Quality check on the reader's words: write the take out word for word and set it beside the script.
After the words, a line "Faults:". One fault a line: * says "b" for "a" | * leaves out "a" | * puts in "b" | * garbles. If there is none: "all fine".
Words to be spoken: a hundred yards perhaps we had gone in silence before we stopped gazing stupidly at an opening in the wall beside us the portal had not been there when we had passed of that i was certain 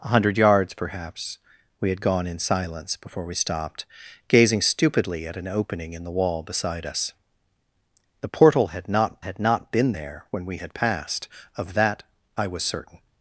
a hundred yards perhaps we had gone in silence before we stopped gazing stupidly at an opening in the wall beside us the portal had not had not been there when we had passed of that i was certain
Faults:
* puts in "had not"